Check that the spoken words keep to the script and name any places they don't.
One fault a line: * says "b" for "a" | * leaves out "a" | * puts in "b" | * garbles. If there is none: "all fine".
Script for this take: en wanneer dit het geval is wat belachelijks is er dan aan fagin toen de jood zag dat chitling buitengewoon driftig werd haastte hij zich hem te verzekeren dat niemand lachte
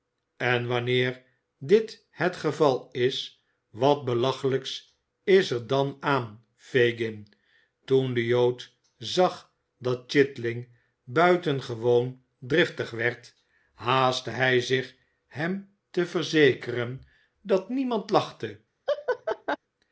all fine